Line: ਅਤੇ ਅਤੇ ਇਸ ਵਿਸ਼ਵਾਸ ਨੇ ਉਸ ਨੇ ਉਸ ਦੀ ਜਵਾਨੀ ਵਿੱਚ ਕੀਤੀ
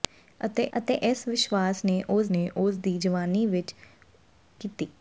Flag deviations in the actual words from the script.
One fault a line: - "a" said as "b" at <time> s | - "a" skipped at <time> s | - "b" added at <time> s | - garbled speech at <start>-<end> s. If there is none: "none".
none